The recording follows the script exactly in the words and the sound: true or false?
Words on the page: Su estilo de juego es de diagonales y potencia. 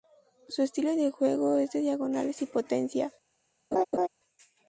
false